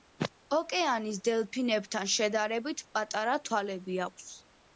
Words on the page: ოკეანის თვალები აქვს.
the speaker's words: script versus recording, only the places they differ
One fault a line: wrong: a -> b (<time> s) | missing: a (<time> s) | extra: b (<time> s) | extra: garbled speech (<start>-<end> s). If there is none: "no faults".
extra: დელფინებთან შედარებით პატარა (1.3 s)